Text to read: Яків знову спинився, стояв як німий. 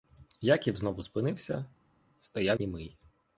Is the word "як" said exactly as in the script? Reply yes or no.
no